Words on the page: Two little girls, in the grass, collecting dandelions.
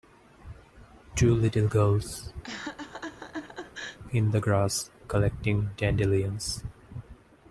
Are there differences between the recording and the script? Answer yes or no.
no